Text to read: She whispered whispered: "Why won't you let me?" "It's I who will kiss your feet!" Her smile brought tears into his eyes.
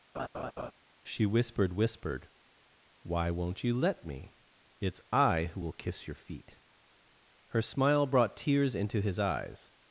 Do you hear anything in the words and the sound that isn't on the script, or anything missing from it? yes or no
yes